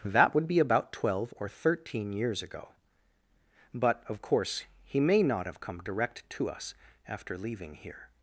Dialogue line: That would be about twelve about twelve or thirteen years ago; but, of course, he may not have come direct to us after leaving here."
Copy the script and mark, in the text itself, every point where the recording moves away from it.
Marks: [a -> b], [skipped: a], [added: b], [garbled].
That would be about twelve [skipped: about twelve] or thirteen years ago; but, of course, he may not have come direct to us after leaving here."